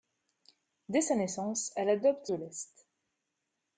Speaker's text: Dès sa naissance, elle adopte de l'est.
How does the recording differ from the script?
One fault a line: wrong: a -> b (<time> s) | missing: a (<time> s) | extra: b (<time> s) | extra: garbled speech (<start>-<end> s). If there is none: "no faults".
no faults